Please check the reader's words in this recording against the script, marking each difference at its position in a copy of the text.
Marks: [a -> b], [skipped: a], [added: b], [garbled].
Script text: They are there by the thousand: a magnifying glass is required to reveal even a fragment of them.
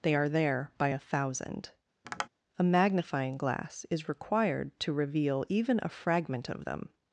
They are there by [the -> a] thousand: a magnifying glass is required to reveal even a fragment of them.